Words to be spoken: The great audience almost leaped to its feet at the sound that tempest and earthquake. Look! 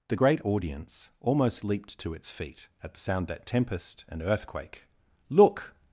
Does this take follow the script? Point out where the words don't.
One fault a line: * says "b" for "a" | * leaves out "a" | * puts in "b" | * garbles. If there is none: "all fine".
all fine